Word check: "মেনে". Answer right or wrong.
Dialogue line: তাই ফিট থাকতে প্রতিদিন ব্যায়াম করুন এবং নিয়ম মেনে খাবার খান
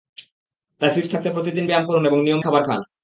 wrong